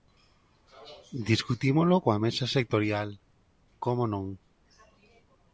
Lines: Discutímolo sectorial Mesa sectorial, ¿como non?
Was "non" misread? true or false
false